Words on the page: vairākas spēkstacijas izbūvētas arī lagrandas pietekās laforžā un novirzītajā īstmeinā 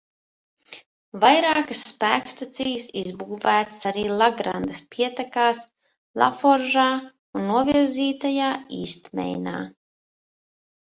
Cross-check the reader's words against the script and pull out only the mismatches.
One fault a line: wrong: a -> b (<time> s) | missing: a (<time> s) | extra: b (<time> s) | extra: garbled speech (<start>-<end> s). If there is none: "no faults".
no faults